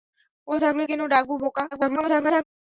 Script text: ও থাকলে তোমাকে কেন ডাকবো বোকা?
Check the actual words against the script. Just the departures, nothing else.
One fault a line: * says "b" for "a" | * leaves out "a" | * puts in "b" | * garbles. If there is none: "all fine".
* leaves out "তোমাকে"
* garbles